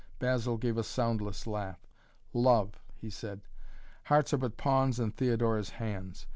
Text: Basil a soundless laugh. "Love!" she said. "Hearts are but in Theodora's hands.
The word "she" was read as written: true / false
false